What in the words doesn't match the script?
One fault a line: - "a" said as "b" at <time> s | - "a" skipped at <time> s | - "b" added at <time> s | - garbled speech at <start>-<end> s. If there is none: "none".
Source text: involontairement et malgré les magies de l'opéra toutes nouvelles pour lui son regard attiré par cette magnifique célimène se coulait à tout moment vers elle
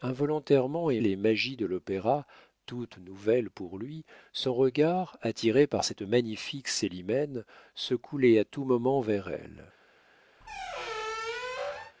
- "malgré" skipped at 1.0 s